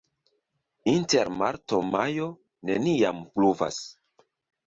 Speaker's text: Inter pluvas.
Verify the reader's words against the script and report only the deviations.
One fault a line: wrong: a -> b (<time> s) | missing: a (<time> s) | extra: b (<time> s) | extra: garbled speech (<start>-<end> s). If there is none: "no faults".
extra: marto majo neniam (1.4 s)